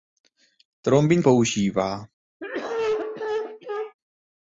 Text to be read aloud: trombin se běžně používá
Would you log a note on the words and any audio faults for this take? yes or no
yes